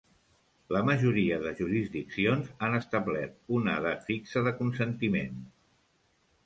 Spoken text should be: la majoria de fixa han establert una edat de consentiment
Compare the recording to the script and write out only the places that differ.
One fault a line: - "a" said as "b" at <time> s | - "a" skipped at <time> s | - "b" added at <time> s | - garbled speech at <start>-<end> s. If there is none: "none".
- "fixa" said as "jurisdiccions" at 1.6 s
- "fixa" added at 4.1 s